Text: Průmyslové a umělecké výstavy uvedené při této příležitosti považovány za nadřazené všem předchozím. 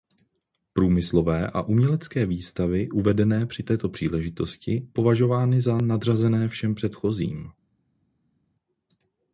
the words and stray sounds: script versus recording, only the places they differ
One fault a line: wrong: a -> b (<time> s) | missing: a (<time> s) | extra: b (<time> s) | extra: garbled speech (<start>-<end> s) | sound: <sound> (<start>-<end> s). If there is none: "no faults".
no faults